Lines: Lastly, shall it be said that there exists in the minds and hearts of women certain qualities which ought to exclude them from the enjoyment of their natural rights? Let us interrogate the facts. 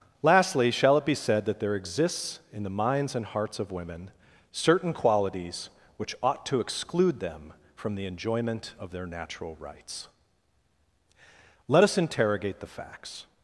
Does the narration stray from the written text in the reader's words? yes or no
no